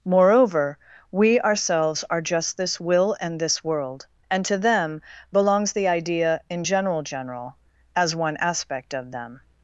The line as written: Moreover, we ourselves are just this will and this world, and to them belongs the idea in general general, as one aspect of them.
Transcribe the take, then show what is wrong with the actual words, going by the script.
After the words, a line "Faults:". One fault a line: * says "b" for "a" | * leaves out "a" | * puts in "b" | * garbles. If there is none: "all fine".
Moreover, we ourselves are just this will and this world, and to them belongs the idea in general general, as one aspect of them.
Faults:
all fine